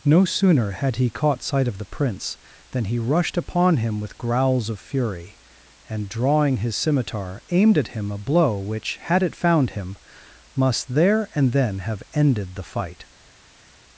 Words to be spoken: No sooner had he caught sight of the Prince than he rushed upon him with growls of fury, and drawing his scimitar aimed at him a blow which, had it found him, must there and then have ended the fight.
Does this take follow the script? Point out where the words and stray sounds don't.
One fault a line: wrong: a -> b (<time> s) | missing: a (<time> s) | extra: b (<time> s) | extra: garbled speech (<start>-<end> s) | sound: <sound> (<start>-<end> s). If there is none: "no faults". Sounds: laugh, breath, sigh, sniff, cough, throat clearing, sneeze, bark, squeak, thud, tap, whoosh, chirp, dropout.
no faults